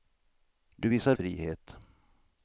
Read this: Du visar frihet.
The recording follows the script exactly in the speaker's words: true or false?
true